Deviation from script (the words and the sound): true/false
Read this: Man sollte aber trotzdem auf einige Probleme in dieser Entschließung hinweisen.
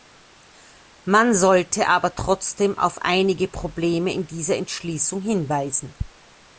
false